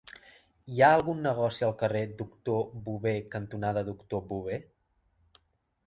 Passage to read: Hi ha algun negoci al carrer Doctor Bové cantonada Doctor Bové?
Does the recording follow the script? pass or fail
pass